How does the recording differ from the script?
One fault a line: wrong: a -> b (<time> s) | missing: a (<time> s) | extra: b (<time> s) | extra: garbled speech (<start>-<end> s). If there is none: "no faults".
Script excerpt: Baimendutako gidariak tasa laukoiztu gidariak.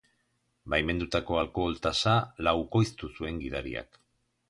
wrong: gidariak -> alkohol (1.4 s)
extra: zuen (3.2 s)